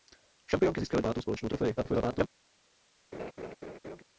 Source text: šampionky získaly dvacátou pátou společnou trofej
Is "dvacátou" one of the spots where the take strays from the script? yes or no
yes